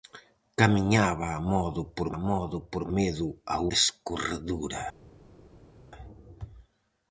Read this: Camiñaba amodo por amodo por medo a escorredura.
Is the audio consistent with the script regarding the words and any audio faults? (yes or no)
yes